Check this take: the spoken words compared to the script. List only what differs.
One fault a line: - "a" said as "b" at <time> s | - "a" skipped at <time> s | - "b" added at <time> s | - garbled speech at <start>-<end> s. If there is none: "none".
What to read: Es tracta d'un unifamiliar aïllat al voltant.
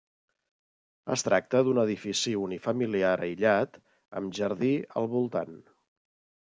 - "edifici" added at 1.8 s
- "amb jardí" added at 4.2 s